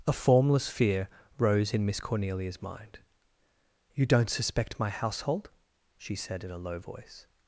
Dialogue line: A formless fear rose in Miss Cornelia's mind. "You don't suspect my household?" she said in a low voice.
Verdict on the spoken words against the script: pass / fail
pass